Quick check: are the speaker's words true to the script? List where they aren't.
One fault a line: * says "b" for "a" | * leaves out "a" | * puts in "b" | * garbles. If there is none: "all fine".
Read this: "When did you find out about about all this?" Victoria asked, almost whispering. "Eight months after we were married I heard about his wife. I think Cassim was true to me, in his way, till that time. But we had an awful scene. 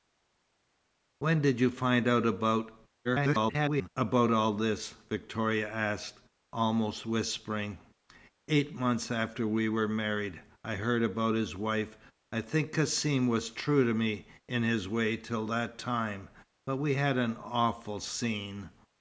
* garbles